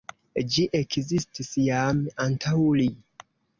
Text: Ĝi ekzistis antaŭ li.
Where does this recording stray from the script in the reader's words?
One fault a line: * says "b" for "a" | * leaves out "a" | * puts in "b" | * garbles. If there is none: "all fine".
* puts in "jam"